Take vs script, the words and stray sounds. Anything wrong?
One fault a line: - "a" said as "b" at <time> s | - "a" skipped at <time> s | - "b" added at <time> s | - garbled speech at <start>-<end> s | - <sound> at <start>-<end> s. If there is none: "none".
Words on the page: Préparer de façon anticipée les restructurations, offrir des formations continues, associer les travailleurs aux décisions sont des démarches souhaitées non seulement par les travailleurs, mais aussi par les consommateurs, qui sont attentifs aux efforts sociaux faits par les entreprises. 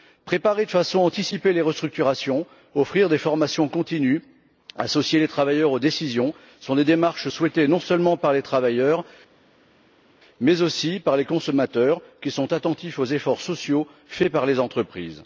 none